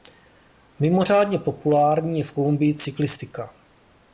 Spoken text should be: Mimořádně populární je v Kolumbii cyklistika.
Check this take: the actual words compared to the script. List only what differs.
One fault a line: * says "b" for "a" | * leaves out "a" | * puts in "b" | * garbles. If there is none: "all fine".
all fine